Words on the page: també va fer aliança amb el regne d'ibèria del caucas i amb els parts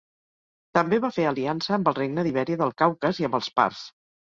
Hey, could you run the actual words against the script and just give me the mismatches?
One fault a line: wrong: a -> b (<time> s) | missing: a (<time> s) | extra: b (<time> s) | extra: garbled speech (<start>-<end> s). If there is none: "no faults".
no faults